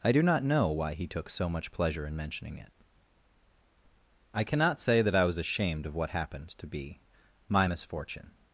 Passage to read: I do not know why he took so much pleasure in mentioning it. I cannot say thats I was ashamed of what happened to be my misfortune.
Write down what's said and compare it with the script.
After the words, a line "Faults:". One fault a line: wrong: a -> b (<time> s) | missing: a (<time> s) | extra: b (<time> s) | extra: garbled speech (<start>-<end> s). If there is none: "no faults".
I do not know why he took so much pleasure in mentioning it. I cannot say that I was ashamed of what happened to be my misfortune.
Faults:
wrong: thats -> that (5.0 s)